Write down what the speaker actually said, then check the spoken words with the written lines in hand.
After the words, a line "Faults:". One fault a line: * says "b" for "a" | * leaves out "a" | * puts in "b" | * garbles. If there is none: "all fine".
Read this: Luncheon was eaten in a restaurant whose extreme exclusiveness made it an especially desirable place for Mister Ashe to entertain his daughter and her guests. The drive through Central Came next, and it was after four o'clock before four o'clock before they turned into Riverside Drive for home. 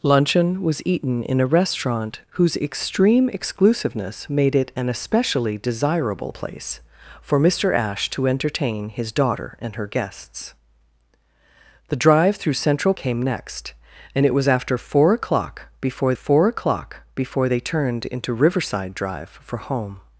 Luncheon was eaten in a restaurant whose extreme exclusiveness made it an especially desirable place for Mister Ashe to entertain his daughter and her guests. The drive through Central Came next, and it was after four o'clock before four o'clock before they turned into Riverside Drive for home.
Faults:
all fine